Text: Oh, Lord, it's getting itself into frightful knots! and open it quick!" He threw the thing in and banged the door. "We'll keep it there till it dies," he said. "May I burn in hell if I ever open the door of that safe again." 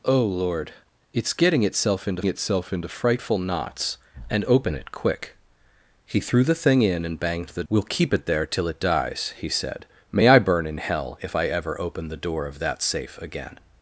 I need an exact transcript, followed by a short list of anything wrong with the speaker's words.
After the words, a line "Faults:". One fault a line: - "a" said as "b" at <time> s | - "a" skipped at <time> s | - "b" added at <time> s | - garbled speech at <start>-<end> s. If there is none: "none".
Oh, Lord, it's getting itself into itself into frightful knots! and open it quick!" He threw the thing in and banged the. "We'll keep it there till it dies," he said. "May I burn in hell if I ever open the door of that safe again."
Faults:
- "itself into" added at 2.2 s
- "door" skipped at 7.6 s